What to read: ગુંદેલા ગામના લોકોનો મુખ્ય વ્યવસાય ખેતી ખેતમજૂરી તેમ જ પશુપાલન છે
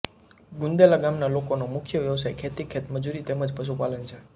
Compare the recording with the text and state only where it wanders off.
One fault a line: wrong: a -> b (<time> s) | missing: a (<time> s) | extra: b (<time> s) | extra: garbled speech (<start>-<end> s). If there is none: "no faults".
no faults